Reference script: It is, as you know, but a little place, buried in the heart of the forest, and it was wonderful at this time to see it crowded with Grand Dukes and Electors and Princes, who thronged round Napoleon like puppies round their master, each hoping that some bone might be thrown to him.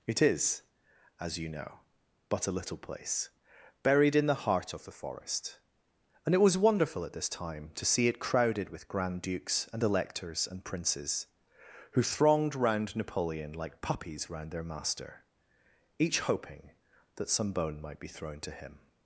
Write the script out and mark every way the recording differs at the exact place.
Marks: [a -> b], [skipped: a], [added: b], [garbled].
It is, as you know, but a little place, buried in the heart of the forest, and it was wonderful at this time to see it crowded with Grand Dukes and Electors and Princes, who thronged round Napoleon like puppies round their master, each hoping that some bone might be thrown to him.